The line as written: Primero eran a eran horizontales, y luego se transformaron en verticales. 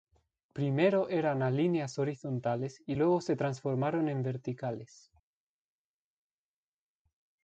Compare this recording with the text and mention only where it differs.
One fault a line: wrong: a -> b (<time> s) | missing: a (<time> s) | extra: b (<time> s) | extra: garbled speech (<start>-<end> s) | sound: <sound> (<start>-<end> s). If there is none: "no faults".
wrong: eran -> líneas (1.5 s)